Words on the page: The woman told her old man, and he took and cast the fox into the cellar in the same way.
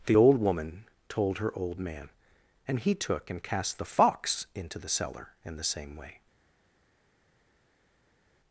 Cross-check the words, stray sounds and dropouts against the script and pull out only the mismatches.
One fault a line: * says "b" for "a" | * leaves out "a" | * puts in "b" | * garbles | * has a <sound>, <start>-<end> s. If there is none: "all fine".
* puts in "old"